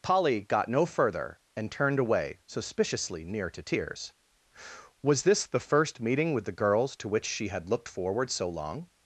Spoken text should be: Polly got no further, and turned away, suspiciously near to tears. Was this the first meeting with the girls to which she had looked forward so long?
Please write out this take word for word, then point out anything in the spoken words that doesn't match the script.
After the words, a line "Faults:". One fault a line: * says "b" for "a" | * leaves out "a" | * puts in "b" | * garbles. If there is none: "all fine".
Polly got no further, and turned away, suspiciously near to tears. Was this the first meeting with the girls to which she had looked forward so long?
Faults:
all fine